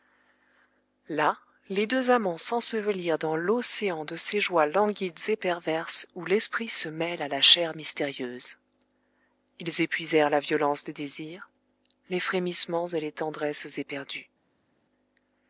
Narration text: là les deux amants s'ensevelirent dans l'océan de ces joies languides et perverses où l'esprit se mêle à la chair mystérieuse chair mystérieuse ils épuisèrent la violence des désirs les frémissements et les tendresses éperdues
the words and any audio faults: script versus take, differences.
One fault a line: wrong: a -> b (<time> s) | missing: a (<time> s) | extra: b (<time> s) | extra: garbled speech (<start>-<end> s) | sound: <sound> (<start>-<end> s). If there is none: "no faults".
missing: chair mystérieuse (8.6 s)